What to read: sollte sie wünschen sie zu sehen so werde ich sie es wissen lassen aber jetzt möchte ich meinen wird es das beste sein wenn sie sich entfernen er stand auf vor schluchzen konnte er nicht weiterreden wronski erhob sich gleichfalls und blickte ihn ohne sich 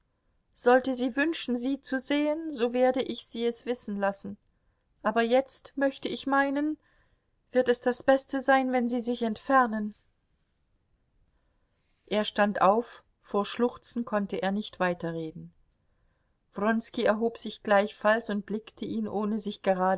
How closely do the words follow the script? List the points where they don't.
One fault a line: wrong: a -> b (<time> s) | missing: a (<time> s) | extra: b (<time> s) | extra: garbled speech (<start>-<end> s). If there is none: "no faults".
no faults